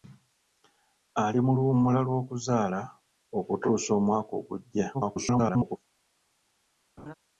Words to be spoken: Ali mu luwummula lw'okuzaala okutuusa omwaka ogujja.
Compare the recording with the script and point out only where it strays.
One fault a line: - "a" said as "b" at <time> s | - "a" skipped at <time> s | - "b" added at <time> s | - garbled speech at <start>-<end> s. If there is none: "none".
- garbled speech at 4.9-5.8 s